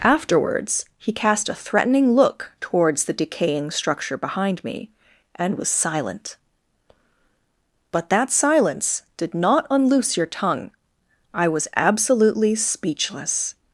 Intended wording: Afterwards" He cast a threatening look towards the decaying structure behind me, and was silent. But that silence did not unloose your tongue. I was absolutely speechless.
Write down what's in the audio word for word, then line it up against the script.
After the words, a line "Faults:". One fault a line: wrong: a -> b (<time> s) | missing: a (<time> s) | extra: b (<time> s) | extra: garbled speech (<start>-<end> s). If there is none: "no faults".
Afterwards" He cast a threatening look towards the decaying structure behind me, and was silent. But that silence did not unloose your tongue. I was absolutely speechless.
Faults:
no faults